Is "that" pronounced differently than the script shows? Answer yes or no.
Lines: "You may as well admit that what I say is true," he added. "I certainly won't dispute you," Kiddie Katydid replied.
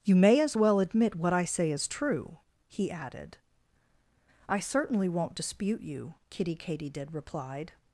yes